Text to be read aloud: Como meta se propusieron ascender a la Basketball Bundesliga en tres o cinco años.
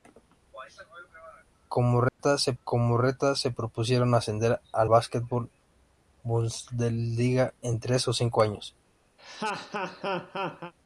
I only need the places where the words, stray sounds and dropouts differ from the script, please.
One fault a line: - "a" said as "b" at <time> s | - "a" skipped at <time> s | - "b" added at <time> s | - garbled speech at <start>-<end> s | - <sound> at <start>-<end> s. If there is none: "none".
- dropout at 2.1-2.2 s
- "como meta se" added at 2.6 s
- "la" skipped at 4.8 s
- laugh at 9.2-10.7 s